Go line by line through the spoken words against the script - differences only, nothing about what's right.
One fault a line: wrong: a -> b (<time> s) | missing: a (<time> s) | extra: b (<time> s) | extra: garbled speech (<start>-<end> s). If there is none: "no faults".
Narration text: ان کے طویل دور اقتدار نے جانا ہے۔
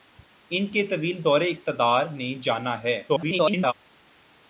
extra: garbled speech (3.1-3.7 s)